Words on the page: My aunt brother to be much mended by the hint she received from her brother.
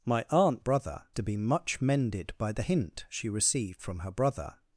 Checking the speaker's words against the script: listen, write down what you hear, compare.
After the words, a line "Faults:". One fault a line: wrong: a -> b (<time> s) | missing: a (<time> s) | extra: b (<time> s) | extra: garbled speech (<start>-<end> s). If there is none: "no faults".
My aunt brother to be much mended by the hint she received from her brother.
Faults:
no faults